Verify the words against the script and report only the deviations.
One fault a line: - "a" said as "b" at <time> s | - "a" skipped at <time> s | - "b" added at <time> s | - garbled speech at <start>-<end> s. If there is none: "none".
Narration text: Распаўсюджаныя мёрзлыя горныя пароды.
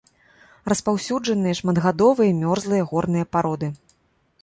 - "шматгадовыя" added at 1.6 s